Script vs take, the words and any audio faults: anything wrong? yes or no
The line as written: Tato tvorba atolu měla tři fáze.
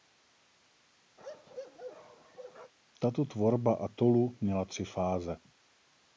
yes